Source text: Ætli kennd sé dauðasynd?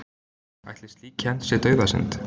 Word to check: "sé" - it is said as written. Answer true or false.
true